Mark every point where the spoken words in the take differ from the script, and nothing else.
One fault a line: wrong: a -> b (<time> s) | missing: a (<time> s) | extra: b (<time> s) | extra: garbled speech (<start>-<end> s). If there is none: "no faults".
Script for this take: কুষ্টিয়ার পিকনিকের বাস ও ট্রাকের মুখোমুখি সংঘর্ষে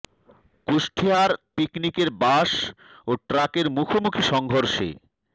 no faults